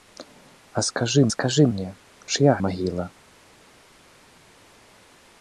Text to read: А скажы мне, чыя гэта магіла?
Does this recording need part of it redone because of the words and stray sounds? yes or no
yes